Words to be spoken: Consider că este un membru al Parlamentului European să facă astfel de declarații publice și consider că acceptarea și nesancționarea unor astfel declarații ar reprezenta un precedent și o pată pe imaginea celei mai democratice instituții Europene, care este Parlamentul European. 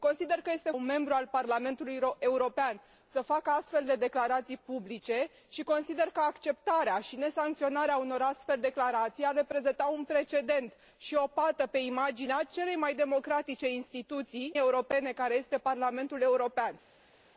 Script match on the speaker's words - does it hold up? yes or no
yes